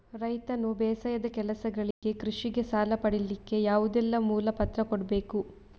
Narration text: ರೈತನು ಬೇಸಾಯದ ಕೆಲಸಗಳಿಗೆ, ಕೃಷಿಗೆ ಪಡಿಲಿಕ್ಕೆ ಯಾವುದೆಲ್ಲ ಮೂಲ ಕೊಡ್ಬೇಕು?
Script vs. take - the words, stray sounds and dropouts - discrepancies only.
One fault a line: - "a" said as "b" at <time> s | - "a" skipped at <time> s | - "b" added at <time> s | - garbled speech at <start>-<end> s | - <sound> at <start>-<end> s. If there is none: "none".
- dropout at 1.9-2.0 s
- "ಸಾಲ" added at 2.6 s
- "ಪತ್ರ" added at 4.5 s